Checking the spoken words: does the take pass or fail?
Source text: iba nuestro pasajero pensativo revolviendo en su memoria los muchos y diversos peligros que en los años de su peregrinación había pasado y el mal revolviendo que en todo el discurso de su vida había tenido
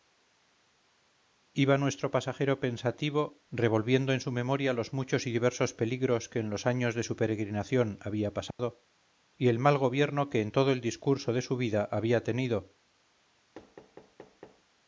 fail